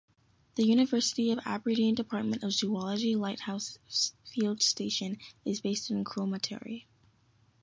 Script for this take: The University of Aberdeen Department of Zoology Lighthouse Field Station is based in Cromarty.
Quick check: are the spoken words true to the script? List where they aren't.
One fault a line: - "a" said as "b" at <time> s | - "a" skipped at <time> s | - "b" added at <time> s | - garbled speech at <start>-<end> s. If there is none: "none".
none